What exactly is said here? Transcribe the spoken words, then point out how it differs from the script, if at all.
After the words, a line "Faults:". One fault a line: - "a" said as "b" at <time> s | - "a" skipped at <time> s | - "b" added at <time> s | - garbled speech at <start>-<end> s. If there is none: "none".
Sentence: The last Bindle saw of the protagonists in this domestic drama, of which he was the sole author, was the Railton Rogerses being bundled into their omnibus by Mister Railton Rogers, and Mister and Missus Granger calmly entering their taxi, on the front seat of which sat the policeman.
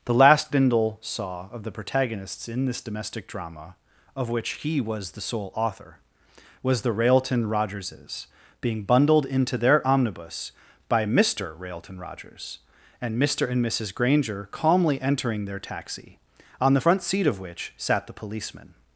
The last Bindle saw of the protagonists in this domestic drama, of which he was the sole author, was the Railton Rogerses being bundled into their omnibus by Mister Railton Rogers, and Mister and Missus Granger calmly entering their taxi, on the front seat of which sat the policeman.
Faults:
none